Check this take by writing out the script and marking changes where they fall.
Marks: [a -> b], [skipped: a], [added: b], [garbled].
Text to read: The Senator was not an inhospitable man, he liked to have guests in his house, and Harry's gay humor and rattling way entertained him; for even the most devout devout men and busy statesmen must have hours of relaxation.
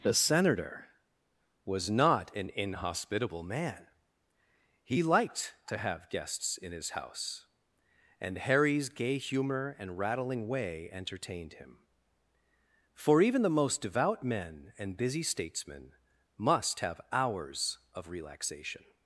The Senator was not an inhospitable man, he liked to have guests in his house, and Harry's gay humor and rattling way entertained him; for even the most devout [skipped: devout] men and busy statesmen must have hours of relaxation.